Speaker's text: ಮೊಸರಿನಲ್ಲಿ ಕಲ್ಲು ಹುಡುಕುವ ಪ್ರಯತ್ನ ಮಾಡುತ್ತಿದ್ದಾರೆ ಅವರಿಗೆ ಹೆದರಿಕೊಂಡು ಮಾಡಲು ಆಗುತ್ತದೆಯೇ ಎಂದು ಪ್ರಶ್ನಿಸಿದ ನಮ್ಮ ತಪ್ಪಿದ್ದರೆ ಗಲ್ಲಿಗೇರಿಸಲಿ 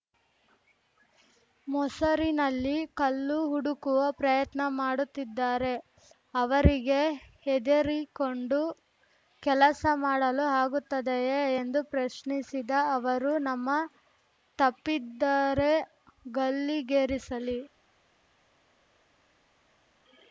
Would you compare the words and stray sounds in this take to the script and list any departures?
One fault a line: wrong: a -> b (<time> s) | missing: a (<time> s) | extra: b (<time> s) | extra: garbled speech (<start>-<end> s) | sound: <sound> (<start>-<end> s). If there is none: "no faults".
extra: ಕೆಲಸ (9.4 s)
extra: ಅವರು (13.0 s)